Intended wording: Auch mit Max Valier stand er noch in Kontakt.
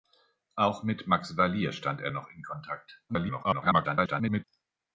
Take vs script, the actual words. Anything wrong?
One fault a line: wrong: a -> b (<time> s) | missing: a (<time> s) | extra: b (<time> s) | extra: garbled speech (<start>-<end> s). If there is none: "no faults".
extra: garbled speech (3.1-4.4 s)